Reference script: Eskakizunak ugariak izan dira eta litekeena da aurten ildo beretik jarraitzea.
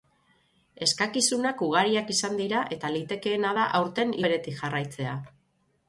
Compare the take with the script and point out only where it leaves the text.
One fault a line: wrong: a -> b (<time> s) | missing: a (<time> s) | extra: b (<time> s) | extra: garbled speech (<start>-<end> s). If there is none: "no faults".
missing: ildo (4.2 s)